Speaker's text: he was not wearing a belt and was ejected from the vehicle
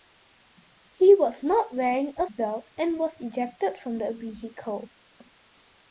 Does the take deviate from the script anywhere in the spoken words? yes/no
no